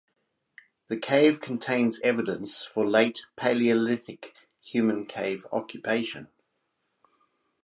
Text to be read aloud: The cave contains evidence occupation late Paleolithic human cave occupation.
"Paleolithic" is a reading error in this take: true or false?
false